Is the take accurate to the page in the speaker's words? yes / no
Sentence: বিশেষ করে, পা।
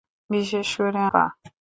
yes